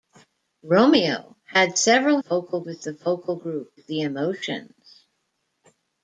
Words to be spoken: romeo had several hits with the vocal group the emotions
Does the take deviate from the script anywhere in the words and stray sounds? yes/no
yes